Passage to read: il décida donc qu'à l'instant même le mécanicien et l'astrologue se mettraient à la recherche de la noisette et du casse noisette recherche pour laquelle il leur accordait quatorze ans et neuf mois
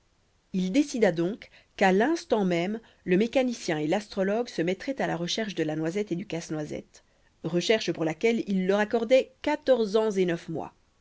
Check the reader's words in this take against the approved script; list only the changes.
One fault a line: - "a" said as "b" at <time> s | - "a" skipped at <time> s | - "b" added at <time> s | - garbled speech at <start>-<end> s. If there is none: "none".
none